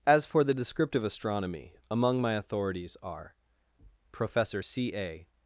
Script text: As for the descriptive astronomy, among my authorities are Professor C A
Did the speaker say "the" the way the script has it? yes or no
yes